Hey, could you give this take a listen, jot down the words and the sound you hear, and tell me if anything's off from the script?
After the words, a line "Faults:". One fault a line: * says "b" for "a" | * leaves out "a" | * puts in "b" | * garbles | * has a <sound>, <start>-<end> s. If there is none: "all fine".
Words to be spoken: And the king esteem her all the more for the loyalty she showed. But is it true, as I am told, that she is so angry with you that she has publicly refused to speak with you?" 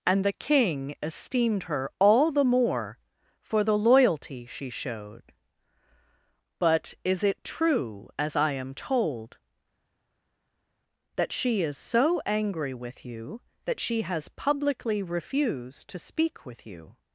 And the king esteemed her all the more for the loyalty she showed. But is it true, as I am told, that she is so angry with you that she has publicly refused to speak with you?"
Faults:
* says "esteemed" for "esteem"